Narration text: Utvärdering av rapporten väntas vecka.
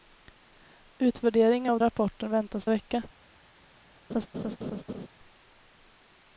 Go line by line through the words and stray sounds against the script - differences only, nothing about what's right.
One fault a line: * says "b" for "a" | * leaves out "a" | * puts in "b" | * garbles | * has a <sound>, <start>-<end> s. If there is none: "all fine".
* has a laugh, 4.1-5.1 s